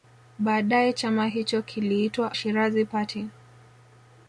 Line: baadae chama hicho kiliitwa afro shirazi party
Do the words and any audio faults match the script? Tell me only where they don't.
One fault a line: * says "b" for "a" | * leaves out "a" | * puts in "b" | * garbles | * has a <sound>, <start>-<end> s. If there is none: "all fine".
* leaves out "afro"